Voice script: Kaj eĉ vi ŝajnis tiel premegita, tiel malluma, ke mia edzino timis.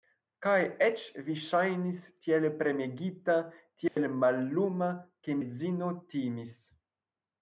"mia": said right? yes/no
no